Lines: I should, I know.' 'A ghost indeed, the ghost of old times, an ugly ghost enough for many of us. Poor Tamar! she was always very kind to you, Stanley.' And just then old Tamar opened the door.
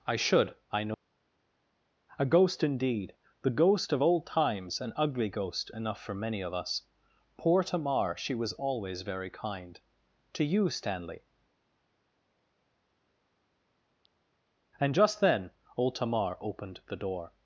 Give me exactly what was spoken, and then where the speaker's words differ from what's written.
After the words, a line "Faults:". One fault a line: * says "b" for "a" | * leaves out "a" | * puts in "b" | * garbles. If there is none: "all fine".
I should, I know.' 'A ghost indeed, the ghost of old times, an ugly ghost enough for many of us. Poor Tamar! she was always very kind to you, Stanley.' And just then old Tamar opened the door.
Faults:
all fine